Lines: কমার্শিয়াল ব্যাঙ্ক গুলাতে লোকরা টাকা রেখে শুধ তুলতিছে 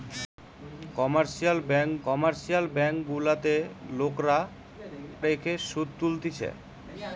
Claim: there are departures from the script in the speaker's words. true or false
true